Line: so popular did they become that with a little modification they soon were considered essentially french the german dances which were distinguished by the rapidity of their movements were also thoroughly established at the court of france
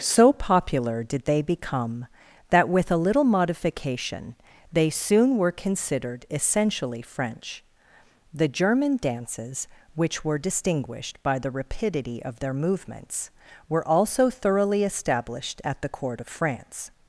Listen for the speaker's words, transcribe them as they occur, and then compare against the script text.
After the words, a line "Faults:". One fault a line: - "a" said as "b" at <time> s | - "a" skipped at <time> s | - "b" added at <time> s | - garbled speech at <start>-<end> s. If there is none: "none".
so popular did they become that with a little modification they soon were considered essentially french the german dances which were distinguished by the rapidity of their movements were also thoroughly established at the court of france
Faults:
none